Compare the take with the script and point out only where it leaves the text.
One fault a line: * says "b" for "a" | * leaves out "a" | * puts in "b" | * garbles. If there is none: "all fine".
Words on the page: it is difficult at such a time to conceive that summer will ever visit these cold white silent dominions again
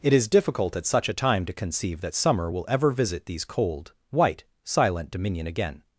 * says "dominion" for "dominions"